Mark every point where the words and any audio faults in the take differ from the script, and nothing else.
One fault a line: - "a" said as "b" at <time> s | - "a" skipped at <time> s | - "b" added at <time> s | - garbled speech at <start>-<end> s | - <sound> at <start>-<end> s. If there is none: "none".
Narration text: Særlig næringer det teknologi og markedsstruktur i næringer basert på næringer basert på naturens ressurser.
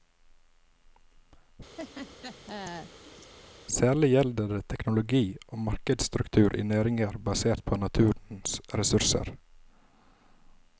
- laugh at 1.8-3.3 s
- "næringer" said as "gjelder" at 4.1 s
- "næringer basert på" skipped at 7.8 s